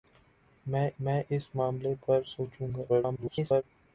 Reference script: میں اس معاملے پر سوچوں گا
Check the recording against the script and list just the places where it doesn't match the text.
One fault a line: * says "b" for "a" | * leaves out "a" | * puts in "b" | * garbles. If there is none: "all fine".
* puts in "میں"
* garbles